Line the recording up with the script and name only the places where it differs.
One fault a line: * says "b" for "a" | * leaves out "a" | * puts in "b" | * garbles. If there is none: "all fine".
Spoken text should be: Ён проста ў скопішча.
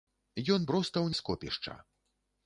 all fine